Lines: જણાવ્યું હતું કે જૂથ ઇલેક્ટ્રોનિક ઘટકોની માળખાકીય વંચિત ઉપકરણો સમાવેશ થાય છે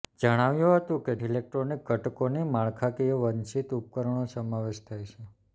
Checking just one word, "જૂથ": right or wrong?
wrong